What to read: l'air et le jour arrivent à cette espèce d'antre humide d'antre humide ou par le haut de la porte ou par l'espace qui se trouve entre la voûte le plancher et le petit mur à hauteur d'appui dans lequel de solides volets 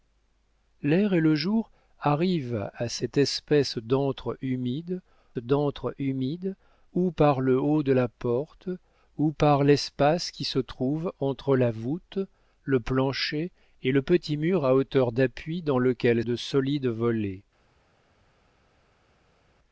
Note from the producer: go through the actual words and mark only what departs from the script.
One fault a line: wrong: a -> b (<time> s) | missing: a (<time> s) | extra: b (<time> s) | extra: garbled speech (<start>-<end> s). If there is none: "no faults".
no faults